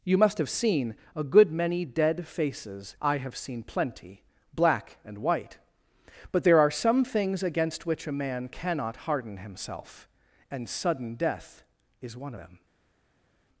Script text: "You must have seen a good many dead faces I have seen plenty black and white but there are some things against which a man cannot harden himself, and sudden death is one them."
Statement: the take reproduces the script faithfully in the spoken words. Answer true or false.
true